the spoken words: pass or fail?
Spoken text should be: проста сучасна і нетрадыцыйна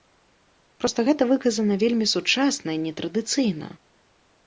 fail